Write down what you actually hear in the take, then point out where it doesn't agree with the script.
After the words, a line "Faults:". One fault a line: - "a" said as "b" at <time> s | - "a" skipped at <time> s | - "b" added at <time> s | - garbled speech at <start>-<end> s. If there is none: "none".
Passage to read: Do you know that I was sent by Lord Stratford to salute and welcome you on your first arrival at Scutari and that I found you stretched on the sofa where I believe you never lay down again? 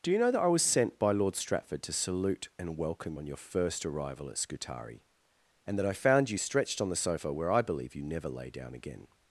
Do you know that I was sent by Lord Stratford to salute and welcome on your first arrival at Scutari and that I found you stretched on the sofa where I believe you never lay down again?
Faults:
- "you" skipped at 3.2 s